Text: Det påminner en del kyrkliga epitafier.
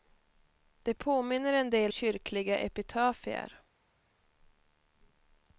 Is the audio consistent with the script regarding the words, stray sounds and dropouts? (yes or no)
yes